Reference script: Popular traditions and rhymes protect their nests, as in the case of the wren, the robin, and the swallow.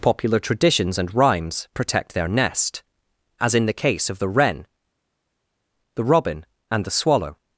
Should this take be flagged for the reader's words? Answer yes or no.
yes